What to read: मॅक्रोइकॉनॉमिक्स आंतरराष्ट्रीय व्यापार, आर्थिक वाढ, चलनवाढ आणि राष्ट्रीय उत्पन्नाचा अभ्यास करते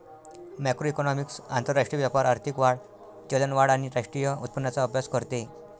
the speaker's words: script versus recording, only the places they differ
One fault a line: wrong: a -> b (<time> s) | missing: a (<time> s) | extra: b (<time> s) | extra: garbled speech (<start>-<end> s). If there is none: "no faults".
no faults